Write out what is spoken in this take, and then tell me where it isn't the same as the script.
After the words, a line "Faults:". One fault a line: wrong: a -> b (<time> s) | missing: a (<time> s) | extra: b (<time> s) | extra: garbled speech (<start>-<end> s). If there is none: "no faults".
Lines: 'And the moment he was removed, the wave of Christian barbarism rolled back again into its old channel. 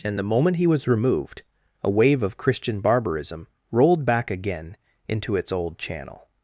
'And the moment he was removed, a wave of Christian barbarism rolled back again into its old channel.
Faults:
wrong: the -> a (1.8 s)